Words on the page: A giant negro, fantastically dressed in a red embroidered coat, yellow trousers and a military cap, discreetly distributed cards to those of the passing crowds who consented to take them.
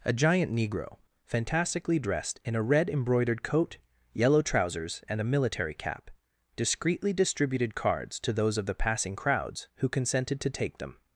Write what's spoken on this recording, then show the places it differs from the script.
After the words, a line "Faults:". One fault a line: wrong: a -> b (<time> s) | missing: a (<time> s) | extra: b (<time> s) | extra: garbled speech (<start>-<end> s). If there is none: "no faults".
A giant negro, fantastically dressed in a red embroidered coat, yellow trousers and a military cap, discreetly distributed cards to those of the passing crowds who consented to take them.
Faults:
no faults